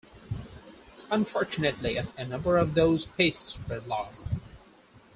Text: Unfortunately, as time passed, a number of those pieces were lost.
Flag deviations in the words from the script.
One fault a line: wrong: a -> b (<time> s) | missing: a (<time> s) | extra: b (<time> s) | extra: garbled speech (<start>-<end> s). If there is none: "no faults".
missing: time passed (2.1 s)